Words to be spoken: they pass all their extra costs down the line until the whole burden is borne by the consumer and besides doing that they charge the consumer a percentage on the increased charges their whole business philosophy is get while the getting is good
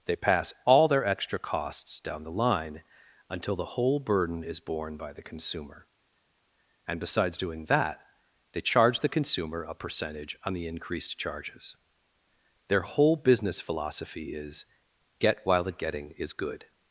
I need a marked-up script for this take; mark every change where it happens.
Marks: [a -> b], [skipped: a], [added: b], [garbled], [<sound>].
they pass all their extra costs down the line until the whole burden is borne by the consumer and besides doing that they charge the consumer a percentage on the increased charges their whole business philosophy is get while the getting is good